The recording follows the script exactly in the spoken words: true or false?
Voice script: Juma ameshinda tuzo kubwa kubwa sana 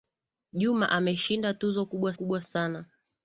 true